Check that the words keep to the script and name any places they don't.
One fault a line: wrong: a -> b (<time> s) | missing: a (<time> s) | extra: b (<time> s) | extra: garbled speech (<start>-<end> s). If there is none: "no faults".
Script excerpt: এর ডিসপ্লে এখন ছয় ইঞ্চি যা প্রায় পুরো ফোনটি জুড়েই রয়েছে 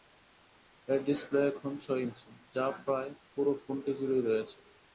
no faults